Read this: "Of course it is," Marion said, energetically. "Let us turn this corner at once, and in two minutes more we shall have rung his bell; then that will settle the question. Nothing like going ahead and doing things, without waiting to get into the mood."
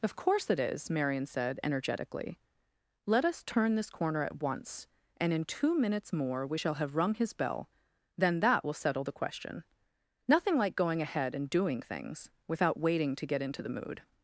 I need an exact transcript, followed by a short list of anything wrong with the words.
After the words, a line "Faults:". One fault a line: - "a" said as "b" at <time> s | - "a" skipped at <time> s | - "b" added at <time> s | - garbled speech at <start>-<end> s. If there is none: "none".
"Of course it is," Marion said, energetically. "Let us turn this corner at once, and in two minutes more we shall have rung his bell; then that will settle the question. Nothing like going ahead and doing things, without waiting to get into the mood."
Faults:
none